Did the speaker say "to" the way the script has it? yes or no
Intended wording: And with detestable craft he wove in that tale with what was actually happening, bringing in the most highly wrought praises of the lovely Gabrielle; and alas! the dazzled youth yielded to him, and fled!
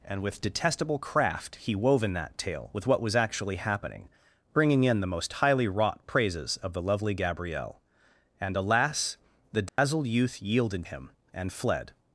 no